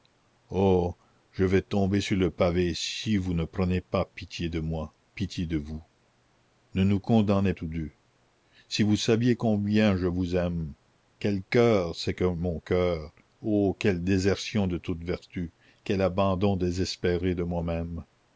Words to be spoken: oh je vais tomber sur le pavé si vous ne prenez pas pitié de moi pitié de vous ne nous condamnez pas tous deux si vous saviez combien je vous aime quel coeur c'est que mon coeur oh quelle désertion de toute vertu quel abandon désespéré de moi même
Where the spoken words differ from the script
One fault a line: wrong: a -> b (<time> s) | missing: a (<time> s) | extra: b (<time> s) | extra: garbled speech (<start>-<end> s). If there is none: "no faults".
missing: pas (7.5 s)